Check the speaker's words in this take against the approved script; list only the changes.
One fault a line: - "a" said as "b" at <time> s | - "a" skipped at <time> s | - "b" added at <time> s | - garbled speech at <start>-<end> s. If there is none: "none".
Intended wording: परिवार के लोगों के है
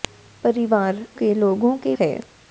none